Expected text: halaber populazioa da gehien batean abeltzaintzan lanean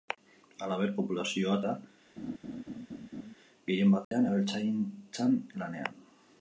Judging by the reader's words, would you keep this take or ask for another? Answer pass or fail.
pass